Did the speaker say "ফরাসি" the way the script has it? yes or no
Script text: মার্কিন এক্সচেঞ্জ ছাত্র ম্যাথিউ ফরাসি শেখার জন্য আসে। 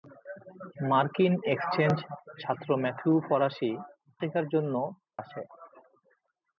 yes